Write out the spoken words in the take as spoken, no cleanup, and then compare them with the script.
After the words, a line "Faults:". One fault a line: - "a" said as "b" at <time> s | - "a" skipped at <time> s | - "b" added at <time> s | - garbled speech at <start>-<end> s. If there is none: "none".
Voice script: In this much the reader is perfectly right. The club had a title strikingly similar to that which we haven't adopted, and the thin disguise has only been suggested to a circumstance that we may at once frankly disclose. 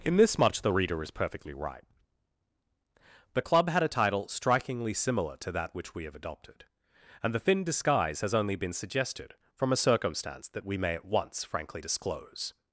In this much the reader is perfectly right. The club had a title strikingly similar to that which we have adopted, and the thin disguise has only been suggested from a circumstance that we may at once frankly disclose.
Faults:
- "haven't" said as "have" at 6.0 s
- "to" said as "from" at 9.5 s